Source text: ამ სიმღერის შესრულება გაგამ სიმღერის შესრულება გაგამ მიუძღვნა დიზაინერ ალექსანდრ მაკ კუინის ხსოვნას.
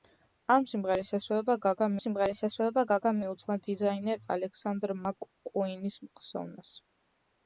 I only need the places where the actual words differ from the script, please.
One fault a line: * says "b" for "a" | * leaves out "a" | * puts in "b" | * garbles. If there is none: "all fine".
all fine